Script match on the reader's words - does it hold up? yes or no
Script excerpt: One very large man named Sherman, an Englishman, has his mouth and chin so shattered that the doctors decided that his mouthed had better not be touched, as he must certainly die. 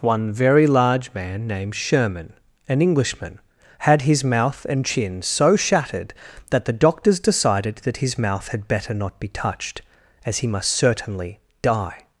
no